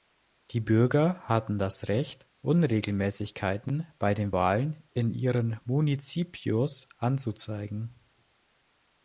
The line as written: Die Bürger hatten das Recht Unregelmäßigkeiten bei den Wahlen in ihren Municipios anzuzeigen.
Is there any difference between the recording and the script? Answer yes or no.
no